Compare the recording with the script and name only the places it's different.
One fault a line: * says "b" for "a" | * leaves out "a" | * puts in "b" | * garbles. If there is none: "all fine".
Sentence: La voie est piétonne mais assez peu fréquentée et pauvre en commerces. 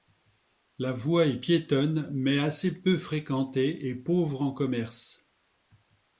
all fine